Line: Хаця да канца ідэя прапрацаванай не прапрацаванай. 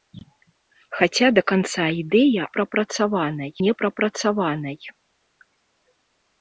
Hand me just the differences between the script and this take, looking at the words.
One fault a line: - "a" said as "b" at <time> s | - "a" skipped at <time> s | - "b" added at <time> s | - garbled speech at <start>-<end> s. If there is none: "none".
none